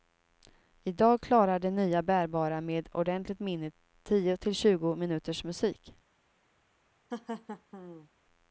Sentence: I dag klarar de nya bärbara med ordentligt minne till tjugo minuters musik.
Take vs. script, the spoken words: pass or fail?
fail